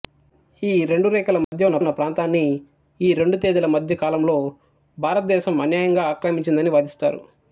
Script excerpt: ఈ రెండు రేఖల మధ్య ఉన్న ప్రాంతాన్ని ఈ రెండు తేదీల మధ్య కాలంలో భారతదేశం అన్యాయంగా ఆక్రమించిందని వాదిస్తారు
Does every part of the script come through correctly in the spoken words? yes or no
no